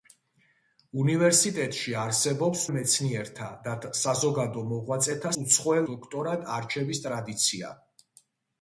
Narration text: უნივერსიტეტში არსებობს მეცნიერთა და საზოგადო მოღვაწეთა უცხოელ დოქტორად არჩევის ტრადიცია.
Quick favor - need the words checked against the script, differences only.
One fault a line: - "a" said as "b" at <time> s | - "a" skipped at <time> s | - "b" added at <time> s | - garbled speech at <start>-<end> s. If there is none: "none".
none